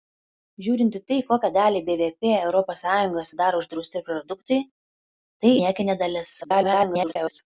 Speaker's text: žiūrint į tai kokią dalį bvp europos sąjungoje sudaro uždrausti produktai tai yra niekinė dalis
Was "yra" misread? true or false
true